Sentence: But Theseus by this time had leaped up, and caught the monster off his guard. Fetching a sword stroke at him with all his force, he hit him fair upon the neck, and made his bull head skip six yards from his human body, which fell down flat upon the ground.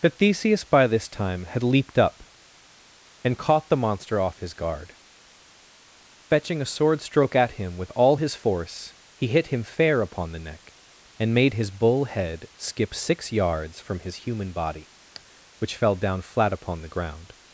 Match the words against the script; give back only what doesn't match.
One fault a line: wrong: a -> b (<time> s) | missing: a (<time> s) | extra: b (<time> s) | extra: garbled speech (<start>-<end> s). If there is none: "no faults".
no faults